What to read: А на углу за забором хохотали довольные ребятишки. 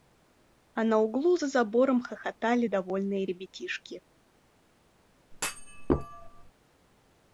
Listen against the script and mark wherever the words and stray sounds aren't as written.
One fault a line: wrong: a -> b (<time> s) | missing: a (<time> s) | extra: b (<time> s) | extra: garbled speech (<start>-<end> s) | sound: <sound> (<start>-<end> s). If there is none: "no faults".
sound: thud (5.3-6.5 s)